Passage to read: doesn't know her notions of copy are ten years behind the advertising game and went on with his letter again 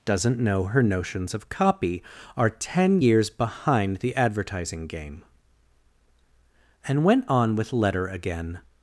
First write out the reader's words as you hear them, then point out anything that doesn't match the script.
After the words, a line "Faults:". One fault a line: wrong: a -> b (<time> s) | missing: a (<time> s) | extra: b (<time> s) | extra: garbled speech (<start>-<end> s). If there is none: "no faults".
doesn't know her notions of copy are ten years behind the advertising game and went on with letter again
Faults:
missing: his (7.7 s)